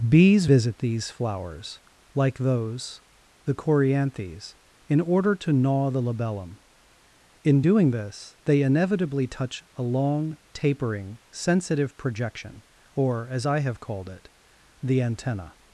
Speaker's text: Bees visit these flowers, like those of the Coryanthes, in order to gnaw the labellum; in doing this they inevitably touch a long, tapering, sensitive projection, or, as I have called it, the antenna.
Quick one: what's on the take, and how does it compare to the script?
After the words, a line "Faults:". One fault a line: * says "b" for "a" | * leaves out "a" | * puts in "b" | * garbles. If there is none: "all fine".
Bees visit these flowers, like those the Coryanthes, in order to gnaw the labellum; in doing this they inevitably touch a long, tapering, sensitive projection, or, as I have called it, the antenna.
Faults:
* leaves out "of"